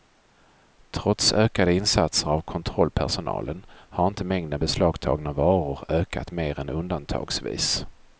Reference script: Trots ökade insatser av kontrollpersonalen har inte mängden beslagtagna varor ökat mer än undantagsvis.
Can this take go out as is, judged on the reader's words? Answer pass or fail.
pass